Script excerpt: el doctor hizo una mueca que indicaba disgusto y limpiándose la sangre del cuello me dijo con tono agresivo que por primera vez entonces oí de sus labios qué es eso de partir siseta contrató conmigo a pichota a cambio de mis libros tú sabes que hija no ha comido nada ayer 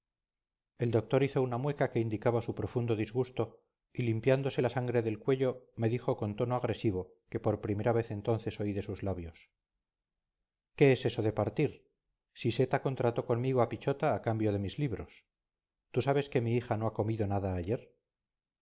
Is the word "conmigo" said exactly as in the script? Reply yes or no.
yes